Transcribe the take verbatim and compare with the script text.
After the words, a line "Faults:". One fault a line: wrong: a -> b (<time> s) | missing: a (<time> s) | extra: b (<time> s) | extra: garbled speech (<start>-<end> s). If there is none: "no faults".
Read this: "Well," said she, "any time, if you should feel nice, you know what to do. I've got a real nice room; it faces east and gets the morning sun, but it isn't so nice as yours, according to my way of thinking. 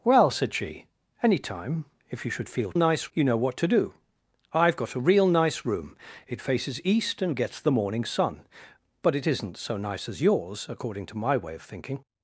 "Well," said she, "any time, if you should feel nice, you know what to do. I've got a real nice room; it faces east and gets the morning sun, but it isn't so nice as yours, according to my way of thinking.
Faults:
no faults